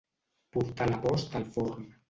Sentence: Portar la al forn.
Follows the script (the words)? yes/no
no